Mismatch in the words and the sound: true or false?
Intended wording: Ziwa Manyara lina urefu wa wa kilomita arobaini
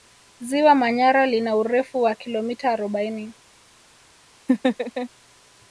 true